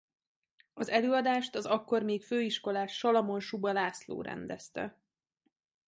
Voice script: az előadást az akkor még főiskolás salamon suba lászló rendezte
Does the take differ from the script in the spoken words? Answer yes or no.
no